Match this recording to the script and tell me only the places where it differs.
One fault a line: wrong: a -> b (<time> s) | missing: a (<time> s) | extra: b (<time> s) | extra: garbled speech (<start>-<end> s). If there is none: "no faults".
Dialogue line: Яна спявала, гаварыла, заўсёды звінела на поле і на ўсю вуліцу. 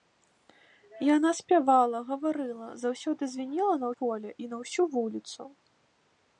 no faults